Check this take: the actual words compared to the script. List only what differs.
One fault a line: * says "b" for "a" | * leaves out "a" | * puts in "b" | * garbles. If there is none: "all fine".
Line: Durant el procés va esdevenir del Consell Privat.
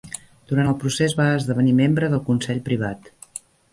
* puts in "membre"